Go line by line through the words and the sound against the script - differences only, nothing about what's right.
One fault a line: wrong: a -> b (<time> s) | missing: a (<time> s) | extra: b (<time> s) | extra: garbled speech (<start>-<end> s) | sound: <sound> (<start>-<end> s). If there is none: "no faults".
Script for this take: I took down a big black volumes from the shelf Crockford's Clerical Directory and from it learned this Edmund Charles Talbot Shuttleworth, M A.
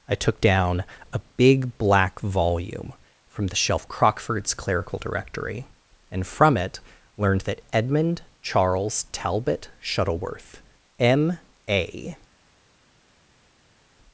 wrong: volumes -> volume (2.2 s)
wrong: this -> that (7.4 s)